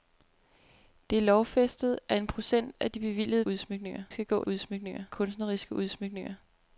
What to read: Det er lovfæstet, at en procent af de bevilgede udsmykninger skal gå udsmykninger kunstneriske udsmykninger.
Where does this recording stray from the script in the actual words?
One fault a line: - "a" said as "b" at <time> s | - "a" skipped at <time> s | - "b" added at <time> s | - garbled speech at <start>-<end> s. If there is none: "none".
none